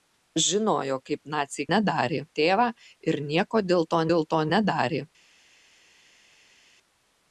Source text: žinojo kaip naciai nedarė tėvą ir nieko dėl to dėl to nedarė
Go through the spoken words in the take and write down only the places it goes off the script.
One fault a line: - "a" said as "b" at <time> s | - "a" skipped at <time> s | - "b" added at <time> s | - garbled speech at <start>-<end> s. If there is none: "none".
none